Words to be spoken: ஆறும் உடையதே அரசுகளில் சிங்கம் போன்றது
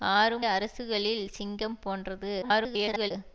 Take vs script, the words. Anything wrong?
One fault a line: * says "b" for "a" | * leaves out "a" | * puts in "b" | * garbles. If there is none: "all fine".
* leaves out "உடையதே"
* garbles